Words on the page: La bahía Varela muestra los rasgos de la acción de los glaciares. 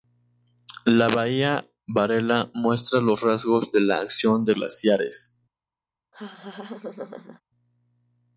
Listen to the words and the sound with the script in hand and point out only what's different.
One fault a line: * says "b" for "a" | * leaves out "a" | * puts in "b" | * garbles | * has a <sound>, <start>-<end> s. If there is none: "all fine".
* leaves out "los"
* has a laugh, 6.1-7.4 s